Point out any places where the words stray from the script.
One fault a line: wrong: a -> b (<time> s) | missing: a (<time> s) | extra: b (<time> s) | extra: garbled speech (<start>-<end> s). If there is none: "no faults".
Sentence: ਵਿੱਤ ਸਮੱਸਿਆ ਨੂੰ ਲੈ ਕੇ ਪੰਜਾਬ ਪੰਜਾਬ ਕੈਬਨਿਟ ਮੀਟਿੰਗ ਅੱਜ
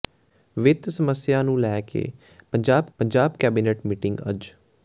no faults